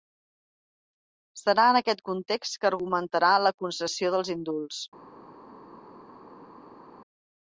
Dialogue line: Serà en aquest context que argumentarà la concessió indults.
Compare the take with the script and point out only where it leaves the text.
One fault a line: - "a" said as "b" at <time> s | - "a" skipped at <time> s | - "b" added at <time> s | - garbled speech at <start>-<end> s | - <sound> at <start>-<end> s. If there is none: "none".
- "dels" added at 4.2 s